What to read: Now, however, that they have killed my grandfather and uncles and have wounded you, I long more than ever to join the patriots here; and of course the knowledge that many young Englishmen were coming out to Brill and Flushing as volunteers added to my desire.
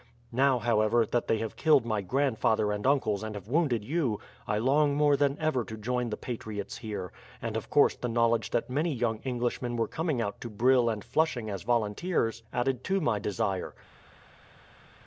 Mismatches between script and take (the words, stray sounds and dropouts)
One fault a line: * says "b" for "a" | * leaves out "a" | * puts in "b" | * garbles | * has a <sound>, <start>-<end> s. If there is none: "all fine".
all fine